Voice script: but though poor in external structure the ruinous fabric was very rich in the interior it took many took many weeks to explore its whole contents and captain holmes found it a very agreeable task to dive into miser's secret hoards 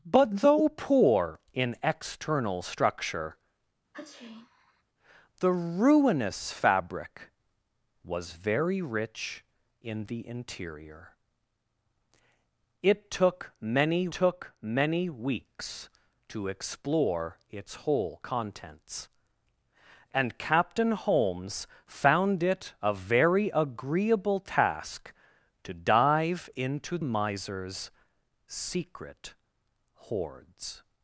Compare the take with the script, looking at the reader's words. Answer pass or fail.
pass